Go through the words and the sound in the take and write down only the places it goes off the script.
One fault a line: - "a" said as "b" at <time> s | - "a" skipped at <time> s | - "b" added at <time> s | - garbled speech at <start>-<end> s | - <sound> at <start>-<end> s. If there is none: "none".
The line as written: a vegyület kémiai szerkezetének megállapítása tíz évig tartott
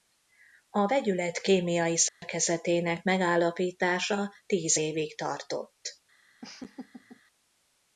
- dropout at 2.1-2.2 s
- laugh at 6.4-7.2 s